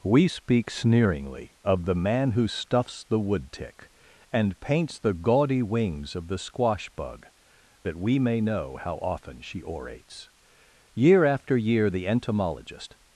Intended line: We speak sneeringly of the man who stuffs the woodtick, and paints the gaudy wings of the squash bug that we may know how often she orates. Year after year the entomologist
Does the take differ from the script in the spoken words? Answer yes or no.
no